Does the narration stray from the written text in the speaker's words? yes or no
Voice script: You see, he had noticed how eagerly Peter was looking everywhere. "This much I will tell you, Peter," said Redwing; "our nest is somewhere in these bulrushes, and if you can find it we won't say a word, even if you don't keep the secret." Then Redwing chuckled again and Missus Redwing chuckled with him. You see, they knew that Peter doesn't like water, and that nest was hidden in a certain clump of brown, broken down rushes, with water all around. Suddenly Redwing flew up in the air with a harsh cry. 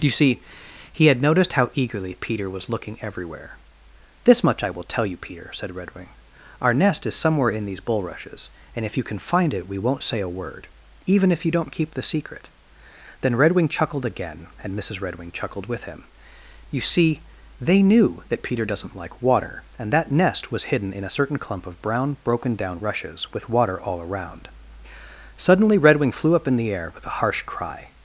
no